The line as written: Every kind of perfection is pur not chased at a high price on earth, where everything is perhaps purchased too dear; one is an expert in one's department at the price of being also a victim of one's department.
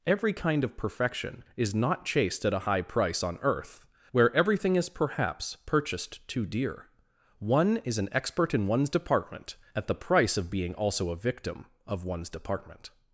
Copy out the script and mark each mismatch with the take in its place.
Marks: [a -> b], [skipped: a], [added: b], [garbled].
Every kind of perfection is [skipped: pur] not chased at a high price on earth, where everything is perhaps purchased too dear; one is an expert in one's department at the price of being also a victim of one's department.